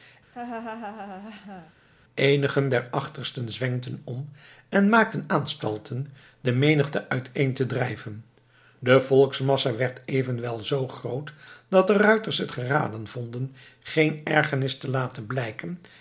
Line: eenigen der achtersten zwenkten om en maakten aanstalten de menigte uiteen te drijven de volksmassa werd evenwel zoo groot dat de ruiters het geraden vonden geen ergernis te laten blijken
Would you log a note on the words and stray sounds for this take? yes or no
yes